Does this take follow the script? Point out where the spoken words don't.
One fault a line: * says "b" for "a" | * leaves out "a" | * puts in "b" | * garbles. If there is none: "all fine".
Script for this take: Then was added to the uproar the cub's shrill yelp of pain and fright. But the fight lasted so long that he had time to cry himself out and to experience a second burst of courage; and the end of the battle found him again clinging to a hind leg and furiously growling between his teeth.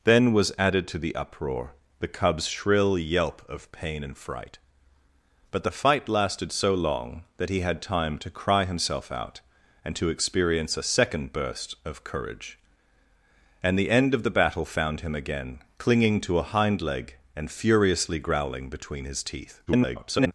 * garbles